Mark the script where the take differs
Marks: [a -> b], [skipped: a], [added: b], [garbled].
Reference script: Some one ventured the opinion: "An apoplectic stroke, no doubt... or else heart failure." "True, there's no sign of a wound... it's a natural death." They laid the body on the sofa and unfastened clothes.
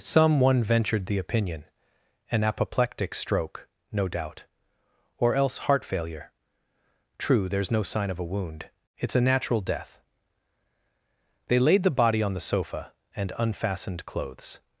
Some one ventured the opinion: "An apoplectic stroke, no doubt... or else heart failure." "True, there's no sign of a wound... it's a natural death." They laid the body on the sofa and unfastened clothes.